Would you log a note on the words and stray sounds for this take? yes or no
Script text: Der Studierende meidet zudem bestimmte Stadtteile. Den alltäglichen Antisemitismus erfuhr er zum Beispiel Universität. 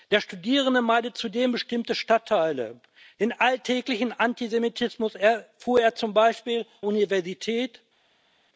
no